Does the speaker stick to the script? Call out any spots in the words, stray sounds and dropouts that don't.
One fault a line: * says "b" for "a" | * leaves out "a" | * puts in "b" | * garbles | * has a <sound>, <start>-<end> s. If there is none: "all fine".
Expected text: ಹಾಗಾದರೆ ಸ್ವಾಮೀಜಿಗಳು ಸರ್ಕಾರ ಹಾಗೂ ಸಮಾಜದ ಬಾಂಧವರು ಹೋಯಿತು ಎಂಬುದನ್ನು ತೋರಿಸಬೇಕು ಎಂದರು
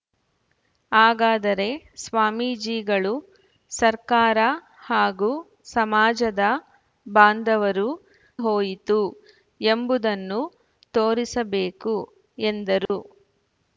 * has a dropout, 12.9-12.9 s